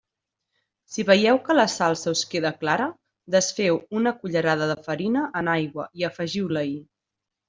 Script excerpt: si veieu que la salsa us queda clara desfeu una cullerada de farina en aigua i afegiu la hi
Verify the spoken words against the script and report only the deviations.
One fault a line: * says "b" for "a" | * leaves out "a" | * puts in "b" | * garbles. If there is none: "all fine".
all fine